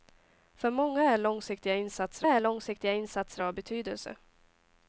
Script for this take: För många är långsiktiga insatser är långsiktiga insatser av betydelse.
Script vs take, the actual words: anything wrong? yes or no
no